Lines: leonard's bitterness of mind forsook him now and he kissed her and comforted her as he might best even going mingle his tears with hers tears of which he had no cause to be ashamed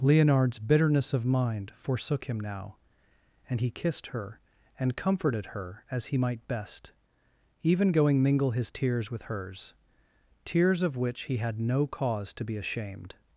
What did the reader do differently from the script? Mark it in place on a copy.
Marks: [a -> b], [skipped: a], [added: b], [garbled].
leonard's bitterness of mind forsook him now and he kissed her and comforted her as he might best even going mingle his tears with hers tears of which he had no cause to be ashamed